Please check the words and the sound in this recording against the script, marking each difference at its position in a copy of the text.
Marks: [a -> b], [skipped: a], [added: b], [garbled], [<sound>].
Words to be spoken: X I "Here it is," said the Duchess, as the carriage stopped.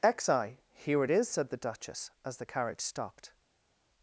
X I "Here it is," said the Duchess, as the carriage stopped.